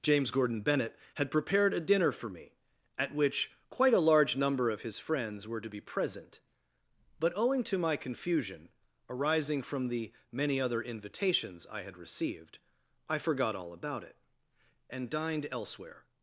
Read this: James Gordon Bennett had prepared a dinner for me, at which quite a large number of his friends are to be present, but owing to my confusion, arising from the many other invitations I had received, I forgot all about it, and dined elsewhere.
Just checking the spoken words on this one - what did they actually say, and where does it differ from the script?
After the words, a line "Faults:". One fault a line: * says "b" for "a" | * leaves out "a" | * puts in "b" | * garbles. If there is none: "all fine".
James Gordon Bennett had prepared a dinner for me, at which quite a large number of his friends were to be present, but owing to my confusion, arising from the many other invitations I had received, I forgot all about it, and dined elsewhere.
Faults:
* says "were" for "are"